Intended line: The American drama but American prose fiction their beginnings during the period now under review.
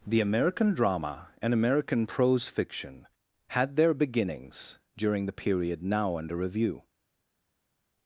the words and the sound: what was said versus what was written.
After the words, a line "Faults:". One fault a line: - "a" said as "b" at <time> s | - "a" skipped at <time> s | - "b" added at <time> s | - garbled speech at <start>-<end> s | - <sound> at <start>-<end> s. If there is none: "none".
The American drama and American prose fiction had their beginnings during the period now under review.
Faults:
- "but" said as "and" at 1.4 s
- "had" added at 3.5 s